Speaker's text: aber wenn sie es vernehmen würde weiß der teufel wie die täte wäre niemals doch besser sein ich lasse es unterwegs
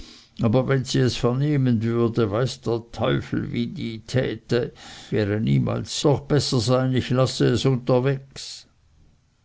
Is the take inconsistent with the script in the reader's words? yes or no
no